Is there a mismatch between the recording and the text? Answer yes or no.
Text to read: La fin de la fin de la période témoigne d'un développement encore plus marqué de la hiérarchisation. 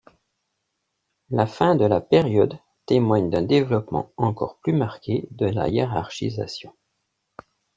yes